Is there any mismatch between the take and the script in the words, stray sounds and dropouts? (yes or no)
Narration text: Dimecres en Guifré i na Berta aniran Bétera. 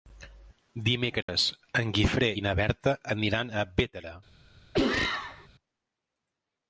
yes